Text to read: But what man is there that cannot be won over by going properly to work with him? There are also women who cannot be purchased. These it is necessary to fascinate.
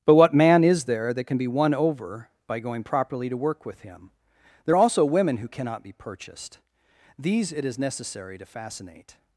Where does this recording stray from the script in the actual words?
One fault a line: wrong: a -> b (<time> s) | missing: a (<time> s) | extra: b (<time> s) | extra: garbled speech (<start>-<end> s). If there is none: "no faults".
wrong: cannot -> can (1.2 s)